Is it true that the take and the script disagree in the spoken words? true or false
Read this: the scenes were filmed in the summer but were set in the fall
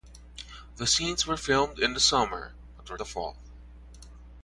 true